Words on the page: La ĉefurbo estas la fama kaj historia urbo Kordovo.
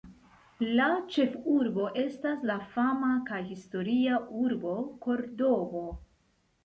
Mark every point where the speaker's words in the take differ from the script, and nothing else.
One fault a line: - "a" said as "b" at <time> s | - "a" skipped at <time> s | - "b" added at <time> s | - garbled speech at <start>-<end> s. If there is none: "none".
none